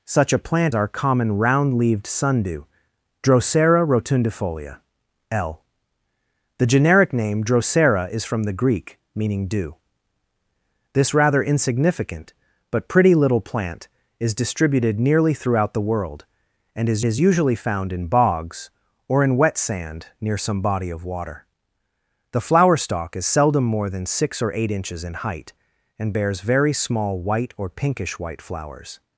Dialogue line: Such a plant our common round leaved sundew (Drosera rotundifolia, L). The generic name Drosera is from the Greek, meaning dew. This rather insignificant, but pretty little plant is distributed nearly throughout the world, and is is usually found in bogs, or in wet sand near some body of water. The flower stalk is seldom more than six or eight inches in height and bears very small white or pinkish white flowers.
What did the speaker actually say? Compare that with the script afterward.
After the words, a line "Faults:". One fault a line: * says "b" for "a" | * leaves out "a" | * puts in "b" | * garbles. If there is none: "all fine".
Such a plant our common round leaved sundew (Drosera rotundifolia, L). The generic name Drosera is from the Greek, meaning dew. This rather insignificant, but pretty little plant is distributed nearly throughout the world, and is is usually found in bogs, or in wet sand near some body of water. The flower stalk is seldom more than six or eight inches in height and bears very small white or pinkish white flowers.
Faults:
all fine